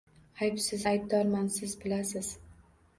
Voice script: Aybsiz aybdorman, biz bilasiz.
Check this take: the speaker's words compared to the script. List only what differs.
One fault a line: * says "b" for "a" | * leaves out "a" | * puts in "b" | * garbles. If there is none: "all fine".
* says "siz" for "biz"